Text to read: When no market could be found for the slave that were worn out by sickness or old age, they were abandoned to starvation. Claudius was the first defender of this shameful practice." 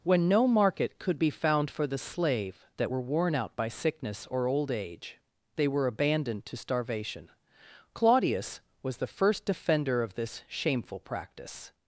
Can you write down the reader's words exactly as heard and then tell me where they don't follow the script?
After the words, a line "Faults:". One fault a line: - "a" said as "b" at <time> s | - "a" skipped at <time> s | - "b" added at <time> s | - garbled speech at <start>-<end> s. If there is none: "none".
When no market could be found for the slave that were worn out by sickness or old age, they were abandoned to starvation. Claudius was the first defender of this shameful practice."
Faults:
none